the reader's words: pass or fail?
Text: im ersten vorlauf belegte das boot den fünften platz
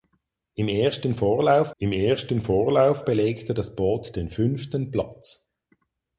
fail